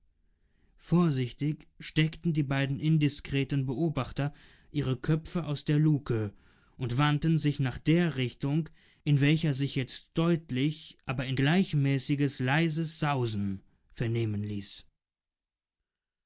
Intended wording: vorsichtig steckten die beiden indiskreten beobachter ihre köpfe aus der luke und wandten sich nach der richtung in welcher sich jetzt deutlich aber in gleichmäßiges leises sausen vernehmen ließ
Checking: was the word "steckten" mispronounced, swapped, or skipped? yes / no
no